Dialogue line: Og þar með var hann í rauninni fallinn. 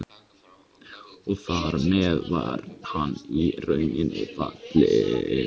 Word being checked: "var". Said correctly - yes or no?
yes